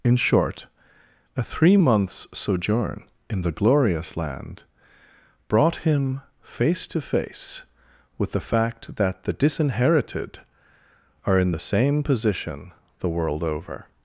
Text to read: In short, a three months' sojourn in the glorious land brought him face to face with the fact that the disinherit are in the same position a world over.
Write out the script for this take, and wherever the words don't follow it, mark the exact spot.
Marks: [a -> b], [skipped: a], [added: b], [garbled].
In short, a three months' sojourn in the glorious land brought him face to face with the fact that the [disinherit -> disinherited] are in the same position [a -> the] world over.